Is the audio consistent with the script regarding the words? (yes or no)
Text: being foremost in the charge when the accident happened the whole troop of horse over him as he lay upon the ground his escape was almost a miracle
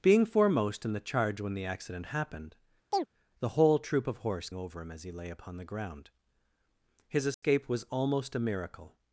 yes